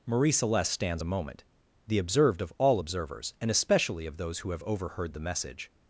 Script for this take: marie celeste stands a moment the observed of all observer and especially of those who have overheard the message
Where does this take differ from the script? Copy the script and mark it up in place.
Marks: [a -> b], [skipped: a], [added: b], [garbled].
marie celeste stands a moment the observed of all [observer -> observers] and especially of those who have overheard the message